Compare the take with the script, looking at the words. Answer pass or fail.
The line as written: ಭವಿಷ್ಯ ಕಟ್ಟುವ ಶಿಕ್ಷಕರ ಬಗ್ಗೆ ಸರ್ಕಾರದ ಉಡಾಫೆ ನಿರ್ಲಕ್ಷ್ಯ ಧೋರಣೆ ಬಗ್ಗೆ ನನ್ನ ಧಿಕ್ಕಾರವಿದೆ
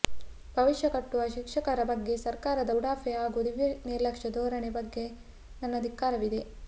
fail